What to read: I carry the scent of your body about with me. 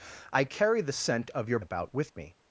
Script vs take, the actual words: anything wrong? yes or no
yes